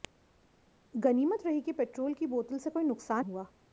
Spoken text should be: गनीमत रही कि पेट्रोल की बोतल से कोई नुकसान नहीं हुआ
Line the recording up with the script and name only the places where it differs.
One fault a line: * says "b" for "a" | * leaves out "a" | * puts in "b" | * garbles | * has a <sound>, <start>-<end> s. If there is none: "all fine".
* leaves out "नहीं"